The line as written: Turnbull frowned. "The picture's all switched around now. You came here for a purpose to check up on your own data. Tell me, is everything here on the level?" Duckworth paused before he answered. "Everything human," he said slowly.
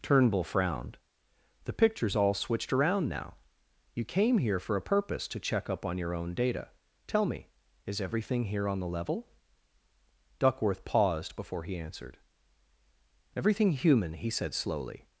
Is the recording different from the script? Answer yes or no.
no